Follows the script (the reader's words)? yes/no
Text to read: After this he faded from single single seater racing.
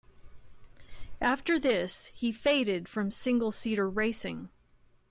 no